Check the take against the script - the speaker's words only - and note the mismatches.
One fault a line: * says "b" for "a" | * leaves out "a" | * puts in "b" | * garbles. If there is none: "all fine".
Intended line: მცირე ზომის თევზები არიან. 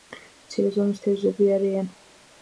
all fine